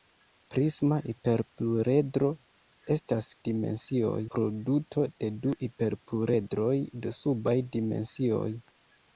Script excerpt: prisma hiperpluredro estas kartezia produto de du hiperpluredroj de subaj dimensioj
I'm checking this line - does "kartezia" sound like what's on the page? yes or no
no